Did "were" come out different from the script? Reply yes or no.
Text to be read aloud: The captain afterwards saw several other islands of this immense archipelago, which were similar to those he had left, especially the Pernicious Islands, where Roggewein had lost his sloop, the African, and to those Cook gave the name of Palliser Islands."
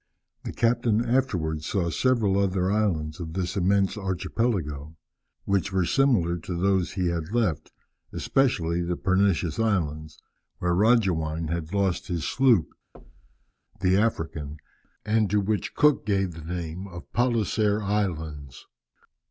no